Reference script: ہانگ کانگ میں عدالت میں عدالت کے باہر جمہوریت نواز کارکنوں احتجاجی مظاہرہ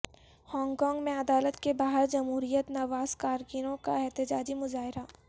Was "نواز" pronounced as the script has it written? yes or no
yes